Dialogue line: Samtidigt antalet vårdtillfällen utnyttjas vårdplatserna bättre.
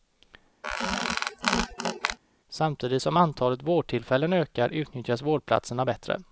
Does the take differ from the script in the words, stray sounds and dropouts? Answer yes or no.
yes